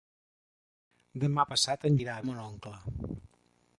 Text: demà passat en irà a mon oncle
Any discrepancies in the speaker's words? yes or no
no